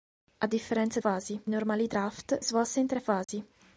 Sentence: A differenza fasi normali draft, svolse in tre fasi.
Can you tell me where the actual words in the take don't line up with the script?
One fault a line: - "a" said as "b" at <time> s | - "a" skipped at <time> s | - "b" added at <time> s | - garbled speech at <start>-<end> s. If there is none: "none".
none